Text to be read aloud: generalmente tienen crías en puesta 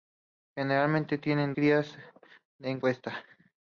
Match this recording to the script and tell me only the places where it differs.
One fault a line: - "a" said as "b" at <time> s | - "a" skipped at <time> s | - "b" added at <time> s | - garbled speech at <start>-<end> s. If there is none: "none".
none